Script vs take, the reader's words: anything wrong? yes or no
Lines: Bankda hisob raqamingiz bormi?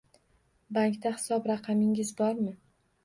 no